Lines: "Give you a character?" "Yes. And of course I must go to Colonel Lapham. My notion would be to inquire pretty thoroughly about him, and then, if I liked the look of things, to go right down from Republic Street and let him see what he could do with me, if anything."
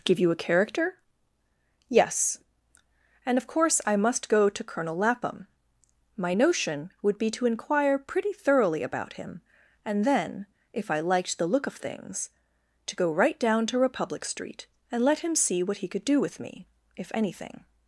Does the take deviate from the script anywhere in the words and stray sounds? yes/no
yes